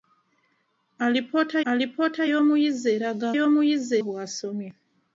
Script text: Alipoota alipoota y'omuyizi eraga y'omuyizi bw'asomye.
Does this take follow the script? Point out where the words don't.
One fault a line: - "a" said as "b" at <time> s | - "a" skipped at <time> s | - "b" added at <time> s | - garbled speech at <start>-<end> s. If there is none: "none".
none